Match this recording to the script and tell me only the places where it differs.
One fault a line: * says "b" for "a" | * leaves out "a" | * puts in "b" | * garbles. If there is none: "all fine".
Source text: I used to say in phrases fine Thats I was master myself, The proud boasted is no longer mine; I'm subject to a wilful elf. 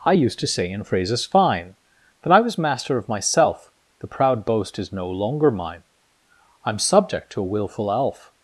* says "That" for "Thats"
* puts in "of"
* says "boast" for "boasted"